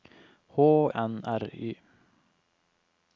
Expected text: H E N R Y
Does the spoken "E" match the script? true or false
false